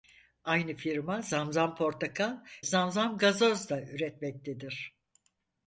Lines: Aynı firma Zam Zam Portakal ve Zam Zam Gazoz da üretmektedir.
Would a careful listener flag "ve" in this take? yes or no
yes